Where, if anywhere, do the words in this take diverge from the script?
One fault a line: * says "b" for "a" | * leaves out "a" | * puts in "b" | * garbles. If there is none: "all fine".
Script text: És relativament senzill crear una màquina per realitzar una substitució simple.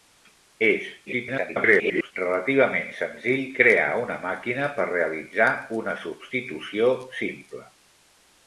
* garbles